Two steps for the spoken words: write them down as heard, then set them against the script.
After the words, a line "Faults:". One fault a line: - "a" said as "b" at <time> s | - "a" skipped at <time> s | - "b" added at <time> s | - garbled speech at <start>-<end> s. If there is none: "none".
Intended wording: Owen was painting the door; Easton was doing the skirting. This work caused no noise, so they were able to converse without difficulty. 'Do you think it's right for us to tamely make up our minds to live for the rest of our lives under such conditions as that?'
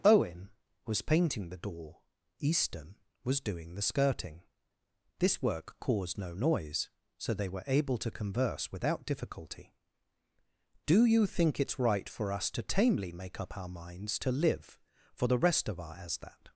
Owen was painting the door; Easton was doing the skirting. This work caused no noise, so they were able to converse without difficulty. 'Do you think it's right for us to tamely make up our minds to live for the rest of our as that?'
Faults:
- "lives under such conditions" skipped at 15.9 s